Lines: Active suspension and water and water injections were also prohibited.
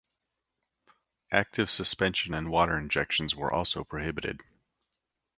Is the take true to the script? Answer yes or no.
no